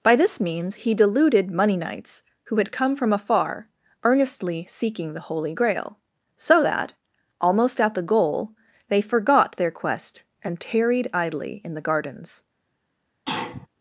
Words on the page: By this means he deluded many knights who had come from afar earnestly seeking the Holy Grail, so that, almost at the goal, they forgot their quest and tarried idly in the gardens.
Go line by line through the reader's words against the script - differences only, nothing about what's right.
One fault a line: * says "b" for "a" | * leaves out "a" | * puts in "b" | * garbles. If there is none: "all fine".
* says "money" for "many"